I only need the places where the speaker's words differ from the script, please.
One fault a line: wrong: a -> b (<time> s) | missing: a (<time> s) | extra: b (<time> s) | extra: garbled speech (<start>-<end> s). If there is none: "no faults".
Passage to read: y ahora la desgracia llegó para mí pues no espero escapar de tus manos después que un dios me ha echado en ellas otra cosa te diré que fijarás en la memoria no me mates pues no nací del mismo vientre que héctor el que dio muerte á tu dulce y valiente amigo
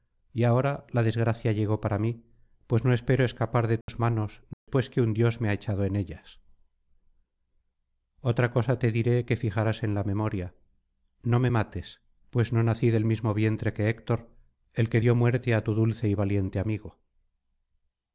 no faults